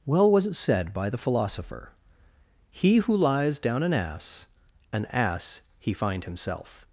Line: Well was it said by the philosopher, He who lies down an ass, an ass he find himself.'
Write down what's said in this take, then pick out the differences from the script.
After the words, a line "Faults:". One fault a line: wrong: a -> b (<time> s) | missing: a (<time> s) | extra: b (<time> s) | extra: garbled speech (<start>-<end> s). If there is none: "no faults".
Well was it said by the philosopher, He who lies down an ass, an ass he find himself.'
Faults:
no faults